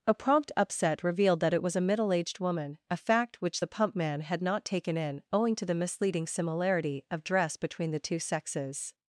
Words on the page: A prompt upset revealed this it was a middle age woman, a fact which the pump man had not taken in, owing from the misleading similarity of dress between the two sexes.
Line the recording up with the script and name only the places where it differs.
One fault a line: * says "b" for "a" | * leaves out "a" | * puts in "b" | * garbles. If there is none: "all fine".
* says "that" for "this"
* says "aged" for "age"
* says "to" for "from"